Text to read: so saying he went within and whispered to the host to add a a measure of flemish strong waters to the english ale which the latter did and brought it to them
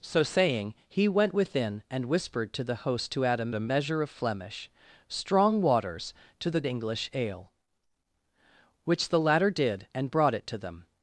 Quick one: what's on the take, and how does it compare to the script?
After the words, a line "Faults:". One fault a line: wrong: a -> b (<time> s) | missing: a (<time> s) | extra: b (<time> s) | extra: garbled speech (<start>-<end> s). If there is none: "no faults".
so saying he went within and whispered to the host to add a a measure of flemish strong waters to the english ale which the latter did and brought it to them
Faults:
no faults